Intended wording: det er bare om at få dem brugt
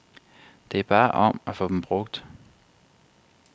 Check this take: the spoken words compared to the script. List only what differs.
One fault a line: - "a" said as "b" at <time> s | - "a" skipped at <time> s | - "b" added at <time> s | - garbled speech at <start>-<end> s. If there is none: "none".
none